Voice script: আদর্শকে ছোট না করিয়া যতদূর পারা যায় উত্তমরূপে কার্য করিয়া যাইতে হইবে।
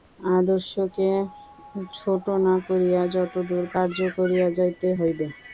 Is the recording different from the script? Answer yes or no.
yes